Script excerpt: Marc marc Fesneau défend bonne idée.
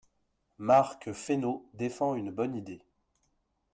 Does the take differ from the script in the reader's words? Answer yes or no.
yes